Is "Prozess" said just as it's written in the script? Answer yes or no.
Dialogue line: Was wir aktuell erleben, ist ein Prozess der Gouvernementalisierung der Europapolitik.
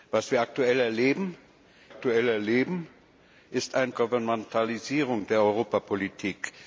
no